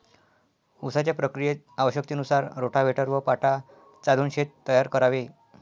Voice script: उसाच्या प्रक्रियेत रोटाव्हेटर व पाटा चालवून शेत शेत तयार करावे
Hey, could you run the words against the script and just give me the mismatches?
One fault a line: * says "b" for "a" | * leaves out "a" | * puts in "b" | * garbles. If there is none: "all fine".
* puts in "आवश्यकतेनुसार"
* leaves out "शेत"